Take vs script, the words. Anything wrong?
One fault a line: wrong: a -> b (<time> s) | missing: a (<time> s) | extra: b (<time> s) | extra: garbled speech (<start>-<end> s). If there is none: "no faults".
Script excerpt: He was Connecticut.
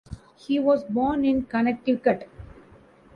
extra: born in (0.8 s)